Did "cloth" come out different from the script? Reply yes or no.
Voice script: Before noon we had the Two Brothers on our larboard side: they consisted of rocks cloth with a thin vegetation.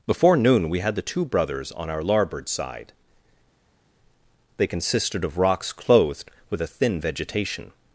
yes